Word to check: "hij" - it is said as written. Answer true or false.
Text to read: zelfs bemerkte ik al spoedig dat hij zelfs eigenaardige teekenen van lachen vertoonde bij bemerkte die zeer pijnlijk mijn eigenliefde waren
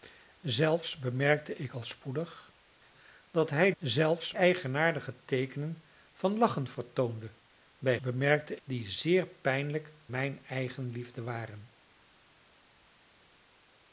true